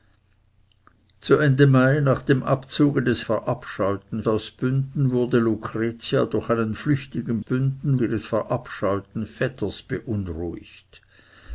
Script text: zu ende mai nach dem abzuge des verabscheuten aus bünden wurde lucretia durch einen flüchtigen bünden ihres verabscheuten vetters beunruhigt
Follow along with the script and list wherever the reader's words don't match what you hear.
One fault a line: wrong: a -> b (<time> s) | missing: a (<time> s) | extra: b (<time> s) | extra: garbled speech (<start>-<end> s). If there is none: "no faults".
no faults